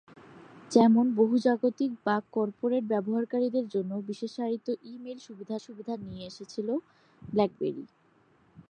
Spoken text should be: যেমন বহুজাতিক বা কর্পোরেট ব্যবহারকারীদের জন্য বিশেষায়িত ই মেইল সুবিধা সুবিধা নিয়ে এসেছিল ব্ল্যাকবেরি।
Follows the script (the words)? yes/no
yes